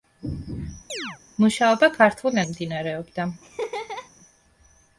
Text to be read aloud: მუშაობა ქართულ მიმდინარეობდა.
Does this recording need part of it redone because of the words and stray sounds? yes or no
yes